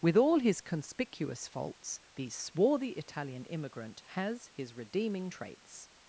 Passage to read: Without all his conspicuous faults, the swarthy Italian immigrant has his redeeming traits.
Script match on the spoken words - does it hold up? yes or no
no